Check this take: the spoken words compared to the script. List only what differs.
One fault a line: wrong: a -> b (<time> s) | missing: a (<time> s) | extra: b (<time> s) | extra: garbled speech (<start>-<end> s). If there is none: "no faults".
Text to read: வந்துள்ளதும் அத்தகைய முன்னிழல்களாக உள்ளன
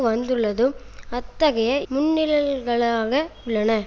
no faults